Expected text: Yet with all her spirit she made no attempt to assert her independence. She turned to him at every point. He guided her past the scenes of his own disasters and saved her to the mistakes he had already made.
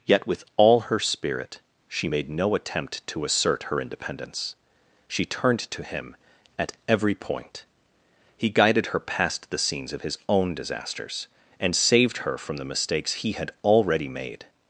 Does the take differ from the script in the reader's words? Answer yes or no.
yes